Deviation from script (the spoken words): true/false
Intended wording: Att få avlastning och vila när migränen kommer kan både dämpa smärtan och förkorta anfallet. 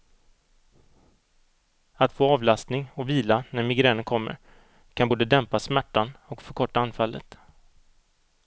false